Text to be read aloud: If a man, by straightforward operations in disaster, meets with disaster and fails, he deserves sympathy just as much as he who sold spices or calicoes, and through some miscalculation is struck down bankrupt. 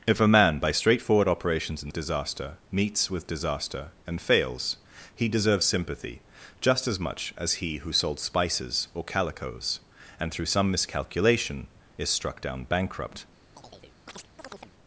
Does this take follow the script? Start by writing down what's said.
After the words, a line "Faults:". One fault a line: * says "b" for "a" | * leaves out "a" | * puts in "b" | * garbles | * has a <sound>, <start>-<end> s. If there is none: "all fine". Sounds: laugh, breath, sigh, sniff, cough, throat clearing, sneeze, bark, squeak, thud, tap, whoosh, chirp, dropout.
If a man, by straightforward operations in disaster, meets with disaster and fails, he deserves sympathy just as much as he who sold spices or calicoes, and through some miscalculation is struck down bankrupt.
Faults:
* has a chirp, 13.5-14.7 s